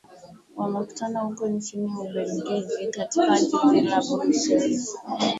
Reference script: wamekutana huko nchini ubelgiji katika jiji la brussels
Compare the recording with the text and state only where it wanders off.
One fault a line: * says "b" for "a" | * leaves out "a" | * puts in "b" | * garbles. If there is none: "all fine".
all fine